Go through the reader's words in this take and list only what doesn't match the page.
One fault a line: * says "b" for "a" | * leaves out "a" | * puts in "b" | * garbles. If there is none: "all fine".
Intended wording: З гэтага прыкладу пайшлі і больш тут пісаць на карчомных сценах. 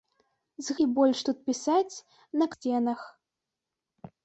* leaves out "гэтага прыкладу пайшлі"
* leaves out "карчомных"